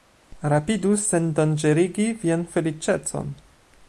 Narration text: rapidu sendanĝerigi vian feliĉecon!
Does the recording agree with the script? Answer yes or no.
yes